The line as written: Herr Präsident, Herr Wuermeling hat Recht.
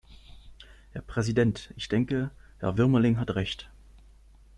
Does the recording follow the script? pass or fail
fail